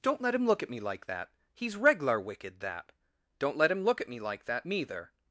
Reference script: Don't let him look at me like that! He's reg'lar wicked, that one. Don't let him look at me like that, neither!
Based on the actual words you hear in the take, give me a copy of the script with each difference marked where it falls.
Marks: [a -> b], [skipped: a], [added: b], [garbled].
Don't let him look at me like that! He's reg'lar wicked, that [skipped: one.] Don't let him look at me like that, neither!